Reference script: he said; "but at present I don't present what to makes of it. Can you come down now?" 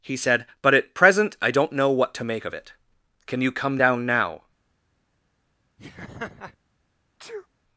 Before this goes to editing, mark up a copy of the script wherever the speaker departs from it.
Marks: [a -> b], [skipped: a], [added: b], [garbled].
he said; "but at present I don't [present -> know] what to [makes -> make] of it. Can you come down now?"